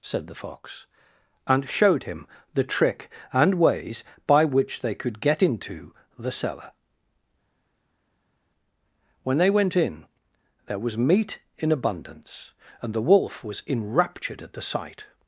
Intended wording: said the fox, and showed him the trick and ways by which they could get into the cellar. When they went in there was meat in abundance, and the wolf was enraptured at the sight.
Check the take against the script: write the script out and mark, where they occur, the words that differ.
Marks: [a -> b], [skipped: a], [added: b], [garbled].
said the fox, and showed him the trick and ways by which they could get into the cellar. When they went in there was meat in abundance, and the wolf was enraptured at the sight.